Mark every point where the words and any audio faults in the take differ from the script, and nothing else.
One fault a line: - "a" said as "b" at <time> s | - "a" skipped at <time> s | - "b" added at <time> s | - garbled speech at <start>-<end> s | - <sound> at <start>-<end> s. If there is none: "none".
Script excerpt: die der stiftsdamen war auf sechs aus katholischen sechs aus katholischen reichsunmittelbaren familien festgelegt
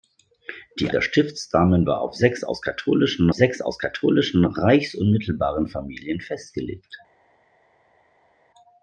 none